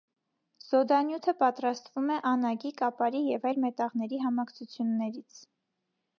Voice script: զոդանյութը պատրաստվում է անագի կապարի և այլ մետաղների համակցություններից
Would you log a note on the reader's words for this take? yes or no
no